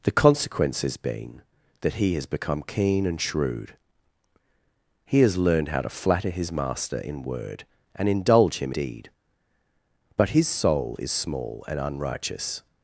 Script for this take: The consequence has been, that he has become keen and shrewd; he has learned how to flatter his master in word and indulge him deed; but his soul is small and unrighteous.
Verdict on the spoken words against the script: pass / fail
pass